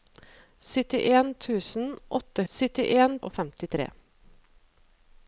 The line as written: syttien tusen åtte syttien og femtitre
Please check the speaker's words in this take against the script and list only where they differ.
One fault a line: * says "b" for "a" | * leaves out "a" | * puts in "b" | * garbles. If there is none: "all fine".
all fine